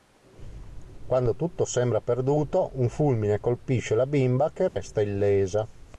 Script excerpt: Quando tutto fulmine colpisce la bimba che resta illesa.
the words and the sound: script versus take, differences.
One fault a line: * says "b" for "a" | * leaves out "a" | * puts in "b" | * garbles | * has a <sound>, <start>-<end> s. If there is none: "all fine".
* puts in "sembra perduto un"
* has a dropout, 4.7-4.8 s